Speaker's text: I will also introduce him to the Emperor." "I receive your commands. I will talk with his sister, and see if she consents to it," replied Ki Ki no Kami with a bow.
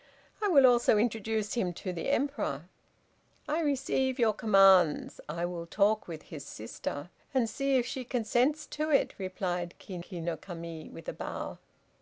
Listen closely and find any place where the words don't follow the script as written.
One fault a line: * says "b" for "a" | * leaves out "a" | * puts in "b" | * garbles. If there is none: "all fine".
all fine